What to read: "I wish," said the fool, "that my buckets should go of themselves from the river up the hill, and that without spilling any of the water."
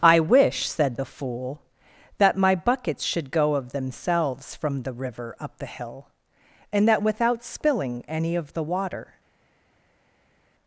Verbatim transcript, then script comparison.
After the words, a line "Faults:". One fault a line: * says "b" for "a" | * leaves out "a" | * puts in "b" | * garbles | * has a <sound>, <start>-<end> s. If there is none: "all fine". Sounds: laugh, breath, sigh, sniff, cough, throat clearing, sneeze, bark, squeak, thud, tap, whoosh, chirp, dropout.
"I wish," said the fool, "that my buckets should go of themselves from the river up the hill, and that without spilling any of the water."
Faults:
all fine